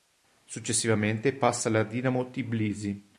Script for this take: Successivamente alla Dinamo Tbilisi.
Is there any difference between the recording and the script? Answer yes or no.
yes